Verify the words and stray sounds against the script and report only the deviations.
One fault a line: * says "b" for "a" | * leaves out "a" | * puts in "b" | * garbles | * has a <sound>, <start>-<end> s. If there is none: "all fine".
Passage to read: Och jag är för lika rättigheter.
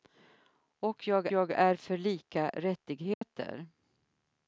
* puts in "jag"
* has a dropout, 3.1-3.2 s